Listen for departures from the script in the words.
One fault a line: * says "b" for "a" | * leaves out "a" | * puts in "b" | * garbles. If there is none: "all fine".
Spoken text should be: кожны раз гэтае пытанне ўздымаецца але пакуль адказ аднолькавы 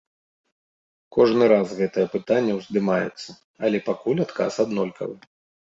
all fine